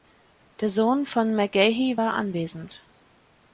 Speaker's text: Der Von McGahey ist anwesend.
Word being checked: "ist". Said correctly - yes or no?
no